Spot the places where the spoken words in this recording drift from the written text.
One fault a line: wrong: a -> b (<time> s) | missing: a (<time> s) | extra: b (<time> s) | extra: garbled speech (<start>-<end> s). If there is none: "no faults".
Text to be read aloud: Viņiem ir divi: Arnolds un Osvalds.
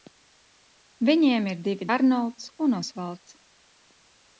no faults